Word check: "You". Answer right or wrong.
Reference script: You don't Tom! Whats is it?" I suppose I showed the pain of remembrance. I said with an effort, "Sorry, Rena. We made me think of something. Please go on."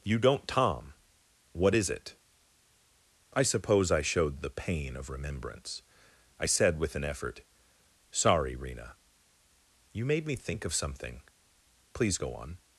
right